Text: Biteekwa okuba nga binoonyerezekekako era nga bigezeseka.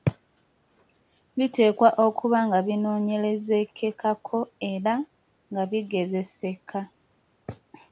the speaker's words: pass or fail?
pass